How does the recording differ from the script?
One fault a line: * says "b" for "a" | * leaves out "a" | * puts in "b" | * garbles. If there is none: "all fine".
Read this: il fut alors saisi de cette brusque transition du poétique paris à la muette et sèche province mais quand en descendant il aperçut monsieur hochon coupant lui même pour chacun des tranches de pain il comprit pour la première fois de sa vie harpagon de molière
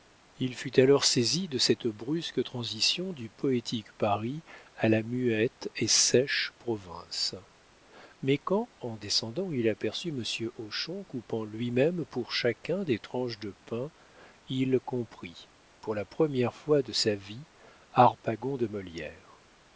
all fine